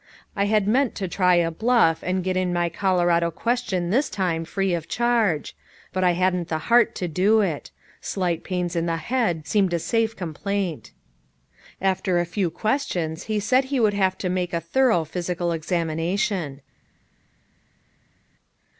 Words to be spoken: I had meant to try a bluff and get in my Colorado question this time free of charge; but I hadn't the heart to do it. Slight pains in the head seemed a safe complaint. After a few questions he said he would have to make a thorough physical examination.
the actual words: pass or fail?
pass